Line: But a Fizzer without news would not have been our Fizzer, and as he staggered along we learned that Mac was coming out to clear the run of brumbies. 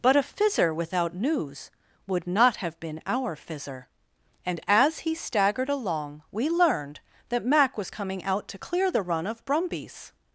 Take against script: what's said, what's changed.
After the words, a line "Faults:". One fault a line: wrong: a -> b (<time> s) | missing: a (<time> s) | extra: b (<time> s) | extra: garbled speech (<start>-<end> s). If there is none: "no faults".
But a Fizzer without news would not have been our Fizzer, and as he staggered along we learned that Mac was coming out to clear the run of brumbies.
Faults:
no faults